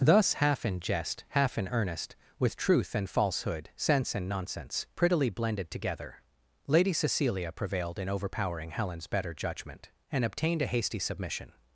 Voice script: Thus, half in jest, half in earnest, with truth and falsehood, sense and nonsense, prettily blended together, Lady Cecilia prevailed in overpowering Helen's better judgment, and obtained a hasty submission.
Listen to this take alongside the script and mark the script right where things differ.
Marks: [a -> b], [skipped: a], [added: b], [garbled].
Thus, half in jest, half in earnest, with truth and falsehood, sense and nonsense, prettily blended together, Lady Cecilia prevailed in overpowering Helen's better judgment, and obtained a hasty submission.